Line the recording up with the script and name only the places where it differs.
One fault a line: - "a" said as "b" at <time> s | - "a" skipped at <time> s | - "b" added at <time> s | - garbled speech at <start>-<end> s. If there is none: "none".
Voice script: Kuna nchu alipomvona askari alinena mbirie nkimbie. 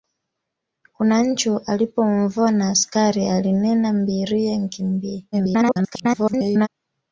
- garbled speech at 5.3-6.7 s